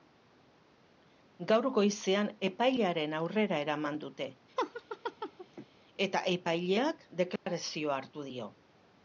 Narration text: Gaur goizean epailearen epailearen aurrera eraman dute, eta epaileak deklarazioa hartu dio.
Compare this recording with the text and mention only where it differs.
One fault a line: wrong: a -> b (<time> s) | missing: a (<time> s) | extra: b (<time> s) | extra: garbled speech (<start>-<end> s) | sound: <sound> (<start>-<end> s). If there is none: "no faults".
missing: epailearen (3.1 s)
sound: laugh (4.6-5.7 s)
sound: dropout (7.4-7.5 s)